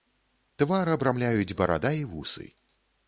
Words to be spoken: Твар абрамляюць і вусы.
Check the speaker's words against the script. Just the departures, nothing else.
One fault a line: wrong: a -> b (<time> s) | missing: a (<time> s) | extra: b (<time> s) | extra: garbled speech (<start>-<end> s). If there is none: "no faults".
extra: барада (1.6 s)